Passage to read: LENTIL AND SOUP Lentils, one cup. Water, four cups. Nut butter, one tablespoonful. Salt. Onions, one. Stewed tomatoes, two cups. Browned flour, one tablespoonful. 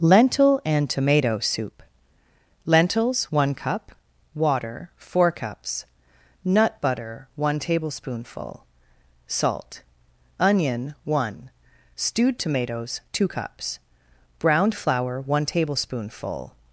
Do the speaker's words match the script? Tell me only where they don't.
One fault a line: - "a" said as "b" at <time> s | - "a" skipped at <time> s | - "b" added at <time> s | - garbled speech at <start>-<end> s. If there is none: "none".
- "TOMATO" added at 0.9 s
- "Onions" said as "Onion" at 10.4 s